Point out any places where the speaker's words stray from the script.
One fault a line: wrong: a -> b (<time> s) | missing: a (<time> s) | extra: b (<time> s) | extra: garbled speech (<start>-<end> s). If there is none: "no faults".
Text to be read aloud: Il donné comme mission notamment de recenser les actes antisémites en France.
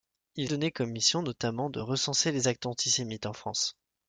no faults